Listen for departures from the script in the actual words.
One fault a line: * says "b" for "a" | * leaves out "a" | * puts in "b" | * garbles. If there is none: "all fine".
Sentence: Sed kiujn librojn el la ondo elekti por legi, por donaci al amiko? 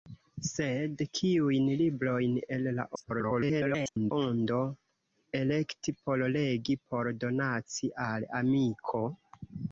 * garbles